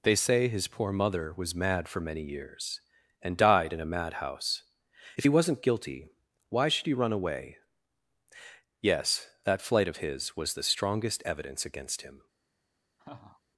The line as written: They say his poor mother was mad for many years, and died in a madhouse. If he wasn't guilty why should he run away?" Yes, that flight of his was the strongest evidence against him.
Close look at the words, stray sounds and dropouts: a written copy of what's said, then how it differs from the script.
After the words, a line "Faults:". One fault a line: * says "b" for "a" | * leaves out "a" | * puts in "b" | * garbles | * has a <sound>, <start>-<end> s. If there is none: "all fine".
They say his poor mother was mad for many years, and died in a madhouse. If he wasn't guilty why should he run away?" Yes, that flight of his was the strongest evidence against him.
Faults:
* has a laugh, 13.0-13.4 s